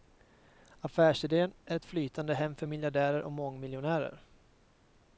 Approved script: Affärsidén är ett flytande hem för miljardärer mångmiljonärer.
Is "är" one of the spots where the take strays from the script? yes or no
no